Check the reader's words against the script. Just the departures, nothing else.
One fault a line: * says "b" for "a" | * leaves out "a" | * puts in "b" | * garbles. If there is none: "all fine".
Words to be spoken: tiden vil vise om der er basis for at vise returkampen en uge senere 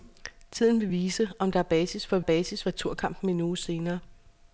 * says "basis" for "vise"